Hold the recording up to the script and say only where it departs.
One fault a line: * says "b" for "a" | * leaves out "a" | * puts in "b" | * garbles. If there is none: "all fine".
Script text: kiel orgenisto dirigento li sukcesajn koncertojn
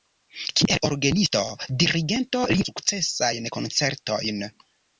all fine